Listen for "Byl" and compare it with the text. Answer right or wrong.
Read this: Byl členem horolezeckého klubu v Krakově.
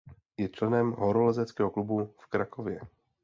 wrong